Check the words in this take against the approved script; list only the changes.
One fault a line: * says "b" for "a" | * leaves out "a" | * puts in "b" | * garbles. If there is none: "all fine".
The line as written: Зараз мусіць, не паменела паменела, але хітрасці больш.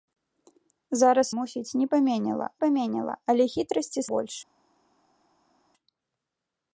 all fine